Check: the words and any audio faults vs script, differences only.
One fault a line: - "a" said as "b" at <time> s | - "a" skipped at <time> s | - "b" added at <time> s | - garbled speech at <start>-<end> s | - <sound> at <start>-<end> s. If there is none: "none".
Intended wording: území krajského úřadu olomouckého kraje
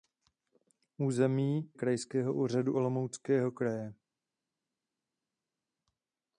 none